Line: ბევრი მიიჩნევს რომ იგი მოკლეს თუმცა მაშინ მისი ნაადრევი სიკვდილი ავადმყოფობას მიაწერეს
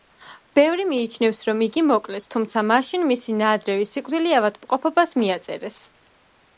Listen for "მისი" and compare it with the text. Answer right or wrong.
right